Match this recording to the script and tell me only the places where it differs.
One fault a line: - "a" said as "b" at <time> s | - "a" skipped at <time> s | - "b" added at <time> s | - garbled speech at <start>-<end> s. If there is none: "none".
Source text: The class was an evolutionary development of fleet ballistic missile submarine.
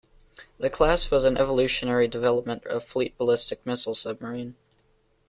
none